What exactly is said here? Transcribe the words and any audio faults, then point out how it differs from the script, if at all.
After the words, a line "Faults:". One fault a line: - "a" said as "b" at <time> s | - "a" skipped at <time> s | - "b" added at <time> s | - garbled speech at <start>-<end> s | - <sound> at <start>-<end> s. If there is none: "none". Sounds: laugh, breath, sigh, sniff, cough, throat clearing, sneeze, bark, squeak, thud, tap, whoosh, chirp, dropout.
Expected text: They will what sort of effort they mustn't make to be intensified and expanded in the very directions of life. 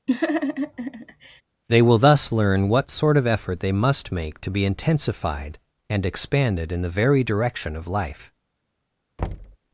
They will thus learn what sort of effort they must make to be intensified and expanded in the very direction of life.
Faults:
- laugh at 0.1-1.4 s
- "thus learn" added at 2.0 s
- "mustn't" said as "must" at 3.7 s
- "directions" said as "direction" at 7.2 s
- thud at 9.2-9.6 s